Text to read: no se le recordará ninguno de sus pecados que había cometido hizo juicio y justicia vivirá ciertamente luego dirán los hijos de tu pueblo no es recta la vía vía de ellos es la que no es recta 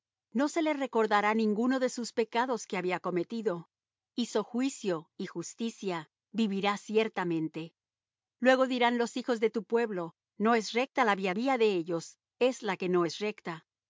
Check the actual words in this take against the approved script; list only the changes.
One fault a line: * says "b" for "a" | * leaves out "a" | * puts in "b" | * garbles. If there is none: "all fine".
all fine